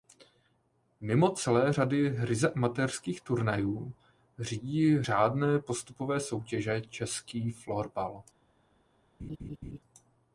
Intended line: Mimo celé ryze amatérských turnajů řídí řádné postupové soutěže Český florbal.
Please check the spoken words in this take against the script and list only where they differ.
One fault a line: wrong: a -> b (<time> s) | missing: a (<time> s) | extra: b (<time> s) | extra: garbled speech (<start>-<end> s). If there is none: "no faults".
extra: řady (1.7 s)